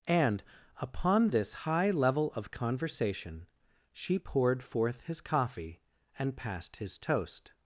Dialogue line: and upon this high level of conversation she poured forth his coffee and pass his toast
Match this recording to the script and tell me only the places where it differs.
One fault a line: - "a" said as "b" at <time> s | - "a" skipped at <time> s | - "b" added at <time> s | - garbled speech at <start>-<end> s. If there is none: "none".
- "pass" said as "passed" at 6.3 s